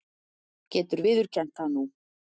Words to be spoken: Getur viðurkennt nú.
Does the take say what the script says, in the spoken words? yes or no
no